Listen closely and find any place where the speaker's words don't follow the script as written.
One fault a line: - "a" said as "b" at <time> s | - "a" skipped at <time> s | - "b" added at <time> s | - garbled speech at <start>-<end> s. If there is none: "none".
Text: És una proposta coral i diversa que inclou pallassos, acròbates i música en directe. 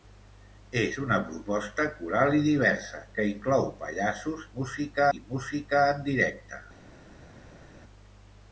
- "acròbates" said as "música" at 4.6 s